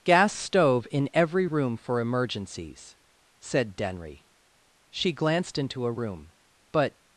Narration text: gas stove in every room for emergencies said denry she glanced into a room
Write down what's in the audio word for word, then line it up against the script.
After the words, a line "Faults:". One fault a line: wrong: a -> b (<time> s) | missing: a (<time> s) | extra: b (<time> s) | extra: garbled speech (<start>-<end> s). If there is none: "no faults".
gas stove in every room for emergencies said denry she glanced into a room but
Faults:
extra: but (6.7 s)